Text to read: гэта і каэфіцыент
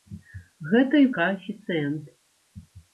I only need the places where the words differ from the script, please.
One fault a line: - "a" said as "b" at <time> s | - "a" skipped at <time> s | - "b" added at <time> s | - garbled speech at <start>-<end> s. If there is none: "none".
none